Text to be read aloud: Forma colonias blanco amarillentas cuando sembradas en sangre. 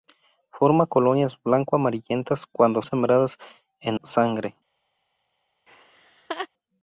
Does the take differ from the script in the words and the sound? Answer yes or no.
yes